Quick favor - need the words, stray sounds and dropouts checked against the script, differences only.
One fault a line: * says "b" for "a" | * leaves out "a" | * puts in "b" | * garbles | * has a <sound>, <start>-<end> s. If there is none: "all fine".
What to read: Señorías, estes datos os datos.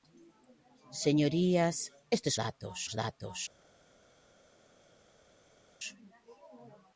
all fine